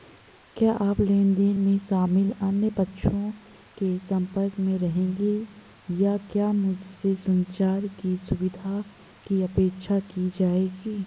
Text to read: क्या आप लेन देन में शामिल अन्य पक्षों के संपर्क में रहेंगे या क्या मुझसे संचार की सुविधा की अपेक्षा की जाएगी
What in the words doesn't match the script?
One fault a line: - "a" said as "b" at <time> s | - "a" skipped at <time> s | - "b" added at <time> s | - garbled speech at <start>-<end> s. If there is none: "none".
none